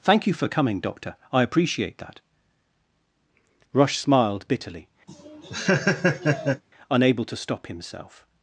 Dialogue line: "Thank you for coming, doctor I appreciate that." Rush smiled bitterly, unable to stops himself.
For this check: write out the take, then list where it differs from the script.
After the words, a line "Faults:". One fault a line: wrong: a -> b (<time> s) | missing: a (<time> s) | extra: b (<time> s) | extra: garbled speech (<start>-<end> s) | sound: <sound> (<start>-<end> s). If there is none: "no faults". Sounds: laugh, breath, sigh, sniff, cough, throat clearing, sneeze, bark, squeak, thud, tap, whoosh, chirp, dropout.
"Thank you for coming, doctor I appreciate that." Rush smiled bitterly, unable to stop himself.
Faults:
sound: laugh (5.1-6.6 s)
wrong: stops -> stop (7.4 s)